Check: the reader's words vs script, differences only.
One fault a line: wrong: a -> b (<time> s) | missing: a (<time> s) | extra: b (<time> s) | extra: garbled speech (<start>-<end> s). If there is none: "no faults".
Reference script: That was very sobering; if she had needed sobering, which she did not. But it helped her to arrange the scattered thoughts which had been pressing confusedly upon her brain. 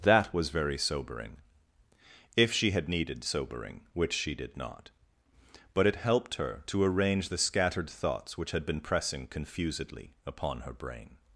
no faults